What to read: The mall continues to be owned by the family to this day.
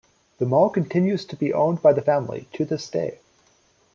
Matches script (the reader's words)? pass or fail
pass